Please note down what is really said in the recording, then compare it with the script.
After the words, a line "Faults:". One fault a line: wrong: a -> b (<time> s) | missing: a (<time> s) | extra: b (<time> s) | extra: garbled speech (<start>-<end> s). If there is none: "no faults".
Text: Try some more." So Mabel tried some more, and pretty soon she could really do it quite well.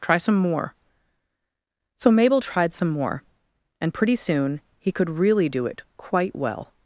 Try some more." So Mabel tried some more, and pretty soon he could really do it quite well.
Faults:
wrong: she -> he (4.8 s)